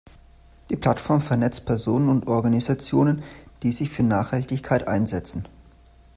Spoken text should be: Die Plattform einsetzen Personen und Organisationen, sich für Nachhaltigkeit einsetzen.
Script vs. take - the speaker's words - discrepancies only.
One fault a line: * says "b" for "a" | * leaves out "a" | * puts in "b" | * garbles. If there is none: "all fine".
* says "vernetzt" for "einsetzen"
* puts in "die"